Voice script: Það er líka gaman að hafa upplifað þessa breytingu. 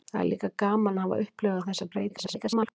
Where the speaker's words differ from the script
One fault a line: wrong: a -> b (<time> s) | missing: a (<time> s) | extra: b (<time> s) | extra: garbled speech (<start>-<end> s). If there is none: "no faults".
extra: garbled speech (2.1-2.7 s)